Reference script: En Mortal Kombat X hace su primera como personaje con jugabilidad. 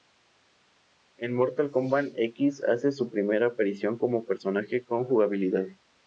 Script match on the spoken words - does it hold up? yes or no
no